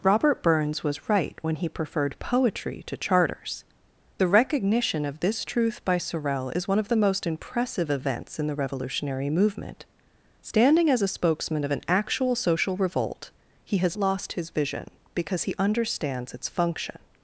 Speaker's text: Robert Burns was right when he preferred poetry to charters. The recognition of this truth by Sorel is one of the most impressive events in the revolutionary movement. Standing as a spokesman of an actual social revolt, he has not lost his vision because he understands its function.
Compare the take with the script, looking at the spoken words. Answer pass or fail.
fail